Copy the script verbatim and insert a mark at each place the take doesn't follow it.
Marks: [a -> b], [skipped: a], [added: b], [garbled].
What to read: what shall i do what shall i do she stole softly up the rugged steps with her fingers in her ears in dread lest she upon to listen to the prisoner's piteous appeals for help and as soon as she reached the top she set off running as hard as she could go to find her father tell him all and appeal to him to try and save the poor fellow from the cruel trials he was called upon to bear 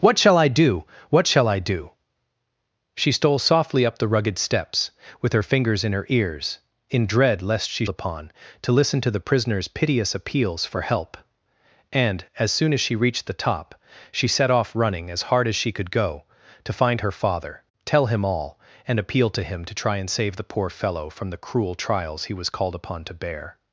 what shall i do what shall i do she stole softly up the rugged steps with her fingers in her ears in dread lest she upon to listen to the prisoner's piteous appeals for help and as soon as she reached the top she set off running as hard as she could go to find her father tell him all and appeal to him to try and save the poor fellow from the cruel trials he was called upon to bear